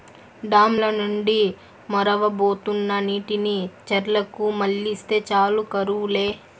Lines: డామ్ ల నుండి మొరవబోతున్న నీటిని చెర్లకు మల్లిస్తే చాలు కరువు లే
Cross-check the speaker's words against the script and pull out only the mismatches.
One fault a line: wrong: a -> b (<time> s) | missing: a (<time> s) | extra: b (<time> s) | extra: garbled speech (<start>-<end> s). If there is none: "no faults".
no faults